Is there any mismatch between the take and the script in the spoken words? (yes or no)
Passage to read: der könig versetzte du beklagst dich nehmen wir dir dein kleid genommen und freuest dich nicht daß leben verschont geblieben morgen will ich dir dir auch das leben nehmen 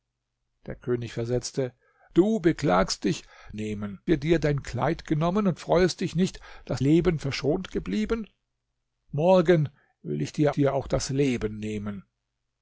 no